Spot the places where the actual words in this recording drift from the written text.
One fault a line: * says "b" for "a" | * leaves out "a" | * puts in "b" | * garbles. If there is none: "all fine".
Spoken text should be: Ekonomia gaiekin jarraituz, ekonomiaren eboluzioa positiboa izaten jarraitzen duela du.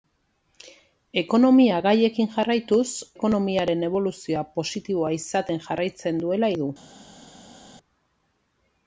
all fine